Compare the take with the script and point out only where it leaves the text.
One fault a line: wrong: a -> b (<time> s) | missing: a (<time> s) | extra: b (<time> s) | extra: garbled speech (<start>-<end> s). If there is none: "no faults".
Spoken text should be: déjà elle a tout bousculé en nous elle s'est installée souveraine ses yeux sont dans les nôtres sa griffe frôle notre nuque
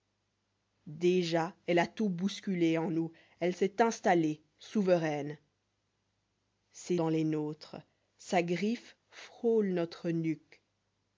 missing: yeux sont (7.0 s)